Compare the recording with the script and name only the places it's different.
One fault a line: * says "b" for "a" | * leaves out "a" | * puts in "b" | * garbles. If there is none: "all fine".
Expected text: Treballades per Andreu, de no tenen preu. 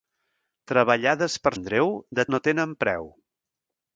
all fine